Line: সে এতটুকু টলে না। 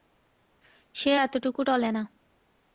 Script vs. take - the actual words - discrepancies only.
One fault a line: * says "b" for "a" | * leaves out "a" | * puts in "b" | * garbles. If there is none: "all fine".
all fine